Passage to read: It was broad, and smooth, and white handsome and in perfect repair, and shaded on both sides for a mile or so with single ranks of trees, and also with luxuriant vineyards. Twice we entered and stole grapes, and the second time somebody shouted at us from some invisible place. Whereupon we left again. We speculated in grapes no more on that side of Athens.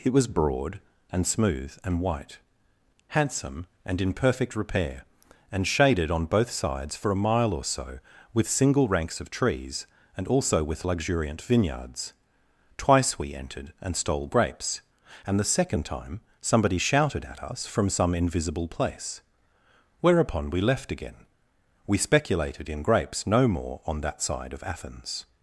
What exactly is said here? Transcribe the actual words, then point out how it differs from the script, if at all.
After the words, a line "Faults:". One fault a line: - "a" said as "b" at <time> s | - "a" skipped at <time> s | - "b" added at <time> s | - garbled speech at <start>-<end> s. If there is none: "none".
It was broad, and smooth, and white handsome and in perfect repair, and shaded on both sides for a mile or so with single ranks of trees, and also with luxuriant vineyards. Twice we entered and stole grapes, and the second time somebody shouted at us from some invisible place. Whereupon we left again. We speculated in grapes no more on that side of Athens.
Faults:
none